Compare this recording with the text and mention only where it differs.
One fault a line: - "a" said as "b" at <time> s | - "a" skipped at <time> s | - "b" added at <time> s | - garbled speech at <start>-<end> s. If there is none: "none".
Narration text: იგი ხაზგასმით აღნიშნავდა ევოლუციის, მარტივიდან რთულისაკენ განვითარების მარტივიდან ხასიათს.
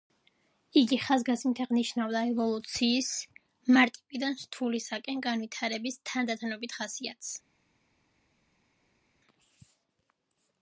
- "მარტივიდან" said as "თანდათანობით" at 6.1 s